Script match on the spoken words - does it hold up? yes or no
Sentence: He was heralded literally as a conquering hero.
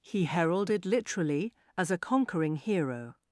no